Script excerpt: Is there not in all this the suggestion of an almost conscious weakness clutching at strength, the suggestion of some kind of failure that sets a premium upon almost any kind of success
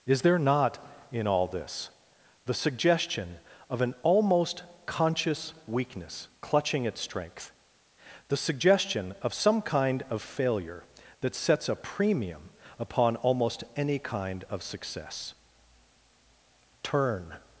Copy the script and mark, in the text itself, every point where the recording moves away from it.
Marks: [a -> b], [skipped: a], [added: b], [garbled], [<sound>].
Is there not in all this the suggestion of an almost conscious weakness clutching at strength, the suggestion of some kind of failure that sets a premium upon almost any kind of success [added: Turn]